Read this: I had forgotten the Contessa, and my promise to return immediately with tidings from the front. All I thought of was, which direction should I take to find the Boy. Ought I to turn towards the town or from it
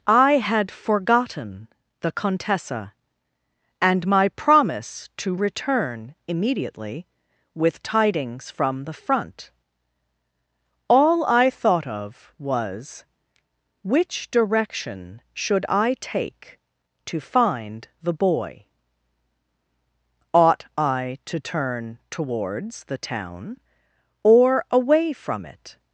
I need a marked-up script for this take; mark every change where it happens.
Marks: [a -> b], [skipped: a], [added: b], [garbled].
I had forgotten the Contessa, and my promise to return immediately with tidings from the front. All I thought of was, which direction should I take to find the Boy. Ought I to turn towards the town or [added: away] from it